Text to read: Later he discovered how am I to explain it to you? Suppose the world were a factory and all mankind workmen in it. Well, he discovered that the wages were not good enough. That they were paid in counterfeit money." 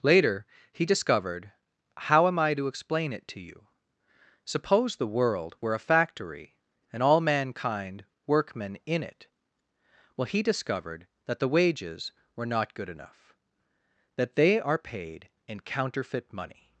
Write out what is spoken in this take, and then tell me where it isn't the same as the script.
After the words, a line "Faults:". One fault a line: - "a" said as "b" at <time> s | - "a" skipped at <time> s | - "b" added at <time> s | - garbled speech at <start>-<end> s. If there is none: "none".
Later he discovered how am I to explain it to you? Suppose the world were a factory and all mankind workmen in it. Well, he discovered that the wages were not good enough. That they are paid in counterfeit money."
Faults:
- "were" said as "are" at 14.6 s